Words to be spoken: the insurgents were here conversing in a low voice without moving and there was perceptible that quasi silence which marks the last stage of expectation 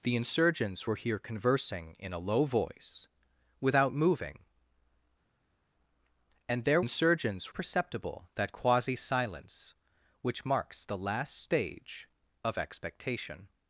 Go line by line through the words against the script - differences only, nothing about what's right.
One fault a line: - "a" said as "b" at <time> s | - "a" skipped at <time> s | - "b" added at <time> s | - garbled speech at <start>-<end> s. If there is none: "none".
- "was" said as "insurgents" at 6.8 s